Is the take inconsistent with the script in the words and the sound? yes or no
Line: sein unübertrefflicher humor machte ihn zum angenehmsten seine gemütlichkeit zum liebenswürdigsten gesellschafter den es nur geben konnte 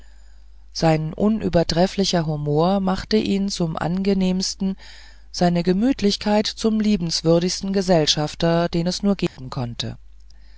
yes